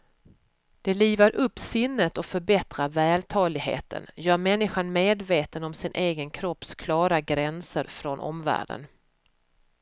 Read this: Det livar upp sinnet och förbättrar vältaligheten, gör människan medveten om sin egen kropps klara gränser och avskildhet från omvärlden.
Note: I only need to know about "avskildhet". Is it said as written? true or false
false